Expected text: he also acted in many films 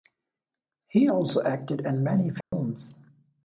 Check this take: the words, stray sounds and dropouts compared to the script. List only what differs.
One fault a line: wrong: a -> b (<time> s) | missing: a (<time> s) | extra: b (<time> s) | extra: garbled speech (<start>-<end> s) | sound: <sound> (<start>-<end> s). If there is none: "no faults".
sound: dropout (2.4-2.5 s)